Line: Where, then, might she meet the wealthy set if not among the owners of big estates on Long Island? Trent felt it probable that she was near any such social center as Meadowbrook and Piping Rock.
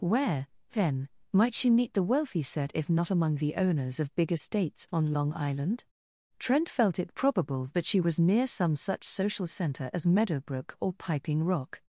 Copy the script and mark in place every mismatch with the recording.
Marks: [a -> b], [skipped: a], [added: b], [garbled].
Where, then, might she meet the wealthy set if not among the owners of big estates on Long Island? Trent felt it probable that she was near [any -> some] such social center as Meadowbrook [and -> or] Piping Rock.